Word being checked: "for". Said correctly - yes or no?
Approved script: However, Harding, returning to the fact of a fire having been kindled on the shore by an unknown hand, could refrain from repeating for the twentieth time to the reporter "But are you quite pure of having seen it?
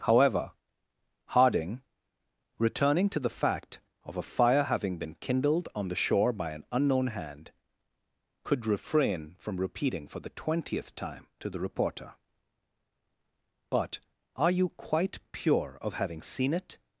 yes